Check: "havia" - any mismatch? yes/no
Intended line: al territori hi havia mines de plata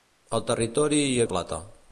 yes